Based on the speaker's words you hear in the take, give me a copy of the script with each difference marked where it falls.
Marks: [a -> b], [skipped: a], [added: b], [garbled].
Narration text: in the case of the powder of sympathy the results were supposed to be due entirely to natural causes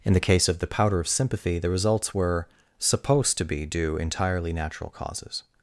in the case of the powder of sympathy the results were supposed to be due entirely [skipped: to] natural causes